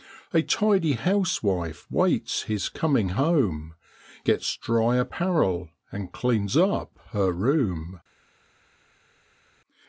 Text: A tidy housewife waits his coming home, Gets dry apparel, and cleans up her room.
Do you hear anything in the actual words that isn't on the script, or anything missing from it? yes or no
no